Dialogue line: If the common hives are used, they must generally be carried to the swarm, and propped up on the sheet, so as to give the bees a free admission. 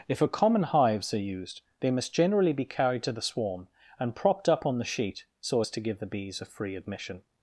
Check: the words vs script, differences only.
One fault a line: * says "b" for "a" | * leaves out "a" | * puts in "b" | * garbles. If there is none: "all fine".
* says "a" for "the"